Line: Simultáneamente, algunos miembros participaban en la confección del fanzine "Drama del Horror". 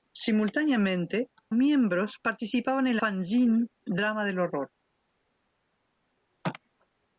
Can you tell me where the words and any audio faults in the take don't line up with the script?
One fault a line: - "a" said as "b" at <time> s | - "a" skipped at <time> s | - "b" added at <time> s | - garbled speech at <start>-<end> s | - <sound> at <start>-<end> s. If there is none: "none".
- "algunos" skipped at 1.3 s
- "la confección del" skipped at 3.0 s